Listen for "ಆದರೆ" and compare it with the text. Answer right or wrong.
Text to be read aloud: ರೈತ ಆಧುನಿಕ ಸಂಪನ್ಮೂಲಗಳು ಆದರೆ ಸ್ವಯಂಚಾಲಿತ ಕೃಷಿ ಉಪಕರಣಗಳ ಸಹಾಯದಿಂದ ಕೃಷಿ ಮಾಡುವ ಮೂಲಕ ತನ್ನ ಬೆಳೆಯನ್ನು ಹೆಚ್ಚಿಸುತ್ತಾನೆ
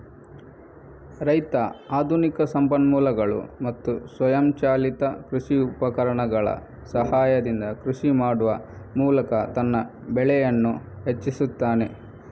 wrong